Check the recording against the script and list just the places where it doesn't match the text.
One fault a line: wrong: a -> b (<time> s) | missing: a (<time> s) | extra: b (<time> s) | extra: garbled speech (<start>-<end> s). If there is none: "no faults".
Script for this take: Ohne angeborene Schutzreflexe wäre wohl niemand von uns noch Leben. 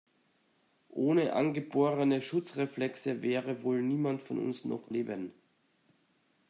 no faults